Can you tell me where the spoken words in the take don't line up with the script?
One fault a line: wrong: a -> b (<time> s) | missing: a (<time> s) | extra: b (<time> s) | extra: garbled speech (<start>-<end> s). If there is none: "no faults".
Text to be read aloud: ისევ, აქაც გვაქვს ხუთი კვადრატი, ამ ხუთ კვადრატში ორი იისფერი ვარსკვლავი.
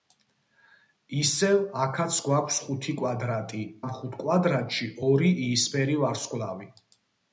no faults